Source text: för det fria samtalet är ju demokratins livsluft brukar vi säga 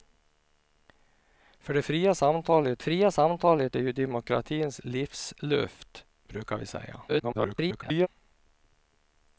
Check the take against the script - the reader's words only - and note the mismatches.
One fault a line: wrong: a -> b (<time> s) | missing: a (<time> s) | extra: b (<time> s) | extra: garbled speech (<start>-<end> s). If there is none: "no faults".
extra: fria samtalet (2.8 s)
extra: garbled speech (7.1-8.1 s)